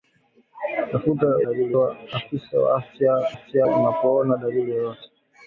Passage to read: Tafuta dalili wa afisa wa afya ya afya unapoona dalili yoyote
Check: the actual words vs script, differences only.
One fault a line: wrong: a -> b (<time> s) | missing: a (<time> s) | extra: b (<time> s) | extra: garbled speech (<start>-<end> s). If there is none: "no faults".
no faults